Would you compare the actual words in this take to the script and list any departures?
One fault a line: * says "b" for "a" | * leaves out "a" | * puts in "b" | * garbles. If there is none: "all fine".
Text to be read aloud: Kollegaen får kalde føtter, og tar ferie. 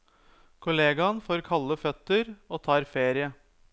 all fine